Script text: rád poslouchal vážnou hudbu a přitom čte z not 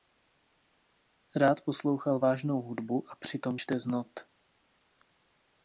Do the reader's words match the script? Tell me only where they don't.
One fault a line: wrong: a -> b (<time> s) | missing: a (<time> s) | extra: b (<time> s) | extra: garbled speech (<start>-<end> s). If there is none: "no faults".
no faults